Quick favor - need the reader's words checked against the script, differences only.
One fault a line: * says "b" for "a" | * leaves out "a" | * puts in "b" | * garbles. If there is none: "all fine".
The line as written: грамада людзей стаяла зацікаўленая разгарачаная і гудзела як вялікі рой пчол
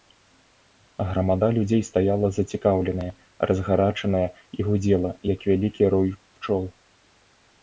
all fine